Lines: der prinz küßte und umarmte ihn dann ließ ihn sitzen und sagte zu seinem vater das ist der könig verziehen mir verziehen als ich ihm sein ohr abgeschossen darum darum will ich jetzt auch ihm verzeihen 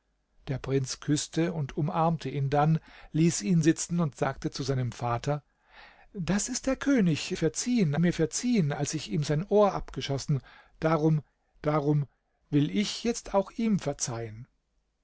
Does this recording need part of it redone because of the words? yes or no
no